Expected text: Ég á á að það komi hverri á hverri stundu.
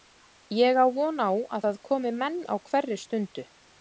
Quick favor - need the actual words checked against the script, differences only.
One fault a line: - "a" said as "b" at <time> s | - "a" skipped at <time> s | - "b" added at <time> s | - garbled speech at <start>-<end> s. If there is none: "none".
- "von" added at 0.9 s
- "hverri" said as "menn" at 2.2 s